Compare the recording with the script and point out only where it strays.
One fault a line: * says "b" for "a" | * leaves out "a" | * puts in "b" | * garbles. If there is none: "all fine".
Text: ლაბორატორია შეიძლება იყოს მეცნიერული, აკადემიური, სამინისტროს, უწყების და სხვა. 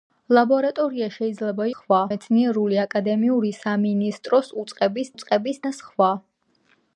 * says "სხვა" for "იყოს"
* puts in "უწყების"